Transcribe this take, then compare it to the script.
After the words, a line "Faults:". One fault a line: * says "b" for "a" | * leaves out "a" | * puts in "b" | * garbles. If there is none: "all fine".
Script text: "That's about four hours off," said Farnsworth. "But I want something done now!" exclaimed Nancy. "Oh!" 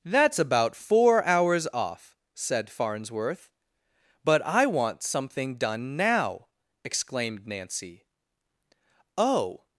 "That's about four hours off," said Farnsworth. "But I want something done now!" exclaimed Nancy. "Oh!"
Faults:
all fine